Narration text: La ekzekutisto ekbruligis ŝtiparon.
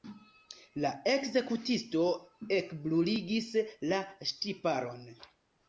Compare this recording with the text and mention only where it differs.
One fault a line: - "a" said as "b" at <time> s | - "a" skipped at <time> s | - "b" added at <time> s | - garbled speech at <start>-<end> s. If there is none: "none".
- "la" added at 3.9 s